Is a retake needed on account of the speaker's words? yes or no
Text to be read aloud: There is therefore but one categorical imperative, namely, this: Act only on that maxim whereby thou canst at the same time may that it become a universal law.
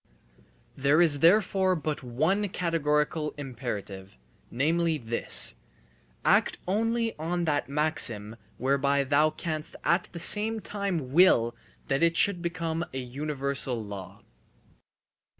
yes